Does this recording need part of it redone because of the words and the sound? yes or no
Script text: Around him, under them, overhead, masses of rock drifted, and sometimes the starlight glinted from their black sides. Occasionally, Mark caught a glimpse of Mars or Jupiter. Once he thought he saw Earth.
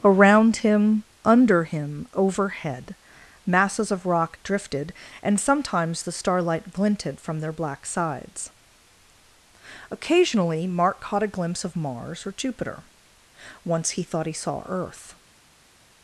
yes